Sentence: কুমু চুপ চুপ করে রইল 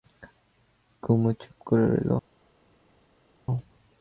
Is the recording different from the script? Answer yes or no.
yes